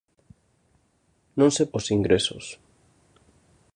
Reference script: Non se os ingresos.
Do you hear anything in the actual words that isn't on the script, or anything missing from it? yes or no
no